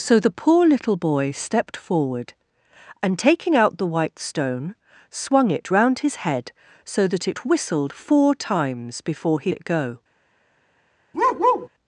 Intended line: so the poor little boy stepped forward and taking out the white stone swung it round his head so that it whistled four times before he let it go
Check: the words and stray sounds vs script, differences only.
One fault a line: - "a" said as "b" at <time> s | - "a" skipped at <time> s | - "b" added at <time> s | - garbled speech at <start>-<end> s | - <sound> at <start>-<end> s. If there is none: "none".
- "let" skipped at 9.5 s
- bark at 11.1-11.7 s